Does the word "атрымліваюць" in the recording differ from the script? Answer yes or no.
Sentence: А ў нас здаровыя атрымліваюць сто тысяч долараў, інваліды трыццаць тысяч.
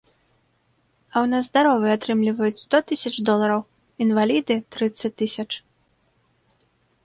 no